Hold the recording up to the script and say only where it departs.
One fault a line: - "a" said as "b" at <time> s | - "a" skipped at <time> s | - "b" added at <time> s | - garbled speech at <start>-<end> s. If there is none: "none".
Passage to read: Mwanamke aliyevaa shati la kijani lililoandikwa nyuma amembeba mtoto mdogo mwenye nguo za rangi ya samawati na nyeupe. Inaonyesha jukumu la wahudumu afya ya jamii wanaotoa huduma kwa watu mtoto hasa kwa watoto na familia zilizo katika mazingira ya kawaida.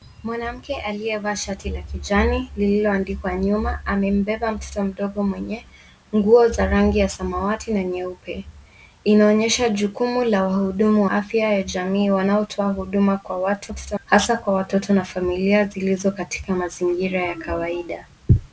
none